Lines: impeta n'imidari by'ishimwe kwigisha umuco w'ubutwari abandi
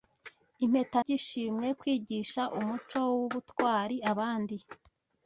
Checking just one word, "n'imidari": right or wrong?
wrong